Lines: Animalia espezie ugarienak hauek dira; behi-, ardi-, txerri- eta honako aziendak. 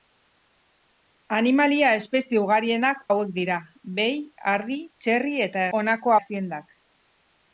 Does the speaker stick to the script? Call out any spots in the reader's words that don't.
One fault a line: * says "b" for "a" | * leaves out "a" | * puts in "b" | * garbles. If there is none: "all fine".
all fine